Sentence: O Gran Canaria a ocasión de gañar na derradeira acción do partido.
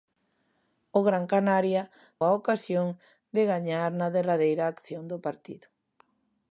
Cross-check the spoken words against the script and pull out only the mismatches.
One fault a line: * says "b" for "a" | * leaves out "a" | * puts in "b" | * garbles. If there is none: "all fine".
all fine